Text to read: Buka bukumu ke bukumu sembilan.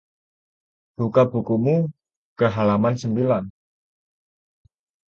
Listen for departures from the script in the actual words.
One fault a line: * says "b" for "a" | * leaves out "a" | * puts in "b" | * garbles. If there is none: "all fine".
* says "halaman" for "bukumu"